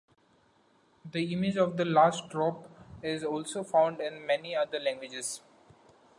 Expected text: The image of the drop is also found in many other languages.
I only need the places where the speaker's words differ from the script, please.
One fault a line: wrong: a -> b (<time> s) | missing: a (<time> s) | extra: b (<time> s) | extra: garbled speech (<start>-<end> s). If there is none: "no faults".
extra: last (1.9 s)